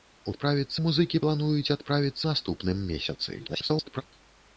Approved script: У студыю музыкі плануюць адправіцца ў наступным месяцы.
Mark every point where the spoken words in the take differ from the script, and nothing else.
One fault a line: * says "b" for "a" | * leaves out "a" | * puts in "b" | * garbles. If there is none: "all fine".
* says "адправіцца" for "студыю"
* leaves out "ў"
* garbles